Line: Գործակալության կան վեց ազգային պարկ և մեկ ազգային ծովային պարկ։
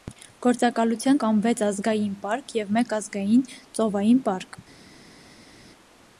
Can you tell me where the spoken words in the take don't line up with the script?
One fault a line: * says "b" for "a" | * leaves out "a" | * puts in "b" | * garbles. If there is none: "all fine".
all fine